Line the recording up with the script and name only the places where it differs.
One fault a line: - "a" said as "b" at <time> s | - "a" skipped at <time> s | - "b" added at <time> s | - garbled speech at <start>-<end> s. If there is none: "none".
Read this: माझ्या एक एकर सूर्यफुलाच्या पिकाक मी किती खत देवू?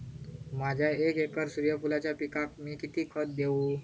none